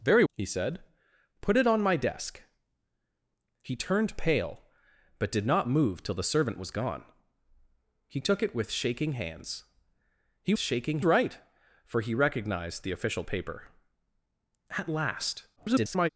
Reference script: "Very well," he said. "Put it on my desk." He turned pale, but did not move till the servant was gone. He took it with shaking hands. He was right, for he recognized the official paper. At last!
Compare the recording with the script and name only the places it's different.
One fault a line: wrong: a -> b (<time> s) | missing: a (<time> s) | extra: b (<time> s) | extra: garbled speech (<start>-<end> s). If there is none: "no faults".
missing: well (0.2 s)
wrong: was -> shaking (10.6 s)
extra: garbled speech (15.6-16.1 s)